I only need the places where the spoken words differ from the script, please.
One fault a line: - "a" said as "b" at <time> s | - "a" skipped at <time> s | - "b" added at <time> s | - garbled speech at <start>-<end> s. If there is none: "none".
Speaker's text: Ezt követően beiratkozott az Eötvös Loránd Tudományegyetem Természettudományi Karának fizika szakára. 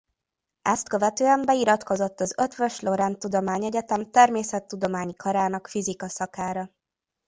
none